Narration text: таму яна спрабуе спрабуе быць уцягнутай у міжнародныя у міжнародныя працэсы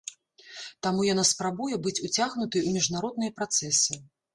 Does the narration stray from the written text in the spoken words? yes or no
yes